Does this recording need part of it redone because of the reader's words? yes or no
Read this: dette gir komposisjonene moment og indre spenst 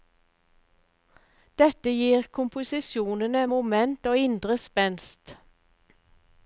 no